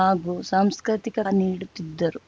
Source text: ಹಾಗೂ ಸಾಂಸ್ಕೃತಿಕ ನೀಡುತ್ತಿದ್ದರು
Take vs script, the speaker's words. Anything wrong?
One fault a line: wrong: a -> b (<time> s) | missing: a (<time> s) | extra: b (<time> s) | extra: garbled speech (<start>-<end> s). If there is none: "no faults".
no faults